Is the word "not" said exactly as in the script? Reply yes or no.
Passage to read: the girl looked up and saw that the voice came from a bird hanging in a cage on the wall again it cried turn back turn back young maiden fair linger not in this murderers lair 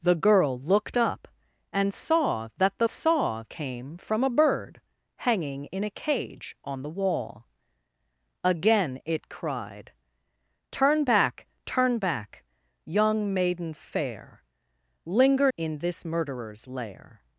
no